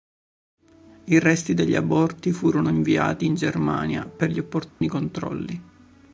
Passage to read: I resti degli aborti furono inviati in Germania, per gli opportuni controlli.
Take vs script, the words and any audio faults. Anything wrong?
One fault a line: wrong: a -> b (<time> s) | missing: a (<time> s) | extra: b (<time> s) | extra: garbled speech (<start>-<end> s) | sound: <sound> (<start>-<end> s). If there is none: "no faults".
sound: dropout (4.7-4.8 s)